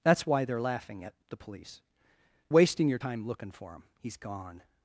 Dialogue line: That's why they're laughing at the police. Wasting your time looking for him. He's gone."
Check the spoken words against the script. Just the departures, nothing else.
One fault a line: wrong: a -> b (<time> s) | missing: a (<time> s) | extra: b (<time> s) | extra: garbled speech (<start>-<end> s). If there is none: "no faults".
no faults